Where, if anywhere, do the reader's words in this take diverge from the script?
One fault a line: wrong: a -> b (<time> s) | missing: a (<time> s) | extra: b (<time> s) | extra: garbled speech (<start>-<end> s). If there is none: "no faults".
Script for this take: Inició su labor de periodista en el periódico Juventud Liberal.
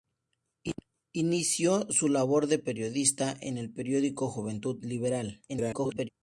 extra: garbled speech (5.5-6.1 s)